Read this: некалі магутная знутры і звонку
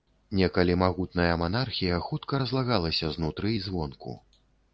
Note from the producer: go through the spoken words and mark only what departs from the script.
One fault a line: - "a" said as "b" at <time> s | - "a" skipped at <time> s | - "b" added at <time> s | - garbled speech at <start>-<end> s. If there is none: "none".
- "манархія хутка разлагалася" added at 1.4 s